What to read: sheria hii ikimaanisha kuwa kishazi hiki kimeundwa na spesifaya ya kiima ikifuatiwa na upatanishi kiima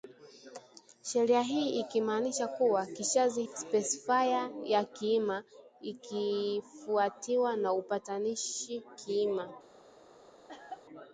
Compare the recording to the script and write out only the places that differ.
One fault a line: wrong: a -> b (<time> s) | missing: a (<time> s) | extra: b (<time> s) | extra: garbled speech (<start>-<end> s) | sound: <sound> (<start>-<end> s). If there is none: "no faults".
missing: hiki kimeundwa na (3.4 s)
sound: cough (10.5-10.9 s)